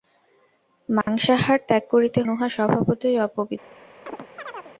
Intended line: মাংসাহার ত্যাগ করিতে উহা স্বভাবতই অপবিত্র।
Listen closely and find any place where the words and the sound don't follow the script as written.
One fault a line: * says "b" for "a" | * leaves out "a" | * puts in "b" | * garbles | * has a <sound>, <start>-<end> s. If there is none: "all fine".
* has a dropout, 1.0-1.1 s
* has a chirp, 4.1-4.7 s